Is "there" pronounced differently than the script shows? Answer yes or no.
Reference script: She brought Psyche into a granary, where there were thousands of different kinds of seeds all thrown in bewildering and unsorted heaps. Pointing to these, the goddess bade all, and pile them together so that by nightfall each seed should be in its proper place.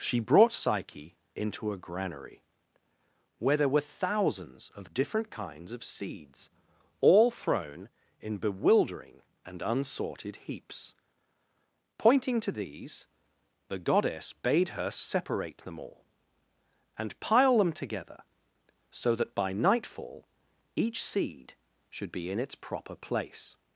no